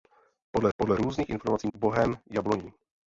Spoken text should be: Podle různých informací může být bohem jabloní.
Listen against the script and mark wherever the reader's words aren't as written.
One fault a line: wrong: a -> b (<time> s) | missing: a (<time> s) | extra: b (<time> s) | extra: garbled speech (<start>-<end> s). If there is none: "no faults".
extra: podle (0.8 s)
missing: může být (1.7 s)